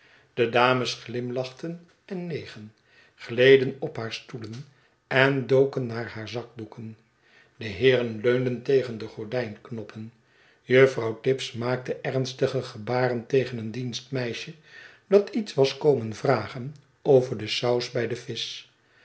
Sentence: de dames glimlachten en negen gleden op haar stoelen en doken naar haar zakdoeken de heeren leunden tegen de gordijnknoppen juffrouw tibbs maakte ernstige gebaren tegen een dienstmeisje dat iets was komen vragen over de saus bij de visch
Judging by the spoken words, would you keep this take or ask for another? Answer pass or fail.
pass